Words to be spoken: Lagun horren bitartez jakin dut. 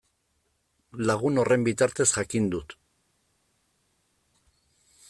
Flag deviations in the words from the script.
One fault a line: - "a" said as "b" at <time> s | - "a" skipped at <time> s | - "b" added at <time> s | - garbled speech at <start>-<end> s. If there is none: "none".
none